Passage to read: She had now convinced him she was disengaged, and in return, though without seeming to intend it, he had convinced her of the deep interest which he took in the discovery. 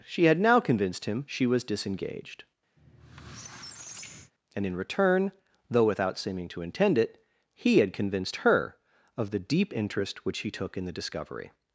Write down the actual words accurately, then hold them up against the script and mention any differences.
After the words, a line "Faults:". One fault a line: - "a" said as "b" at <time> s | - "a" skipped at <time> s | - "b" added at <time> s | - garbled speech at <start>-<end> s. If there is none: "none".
She had now convinced him she was disengaged, and in return, though without seeming to intend it, he had convinced her of the deep interest which he took in the discovery.
Faults:
none